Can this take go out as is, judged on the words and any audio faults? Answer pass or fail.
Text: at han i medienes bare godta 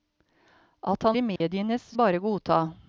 fail